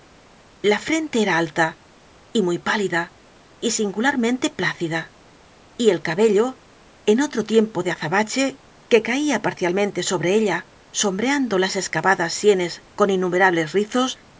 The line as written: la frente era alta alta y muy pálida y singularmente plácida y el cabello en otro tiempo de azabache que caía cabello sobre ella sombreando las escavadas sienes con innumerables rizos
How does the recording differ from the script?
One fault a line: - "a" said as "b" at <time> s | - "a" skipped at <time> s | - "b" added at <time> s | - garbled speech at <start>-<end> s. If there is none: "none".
- "alta" skipped at 1.8 s
- "cabello" said as "parcialmente" at 9.4 s